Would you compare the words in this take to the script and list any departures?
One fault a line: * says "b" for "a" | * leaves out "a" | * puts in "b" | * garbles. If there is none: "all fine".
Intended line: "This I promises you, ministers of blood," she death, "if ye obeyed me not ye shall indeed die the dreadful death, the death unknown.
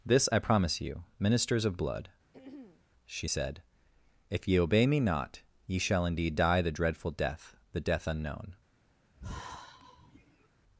* says "promise" for "promises"
* says "said" for "death"
* says "obey" for "obeyed"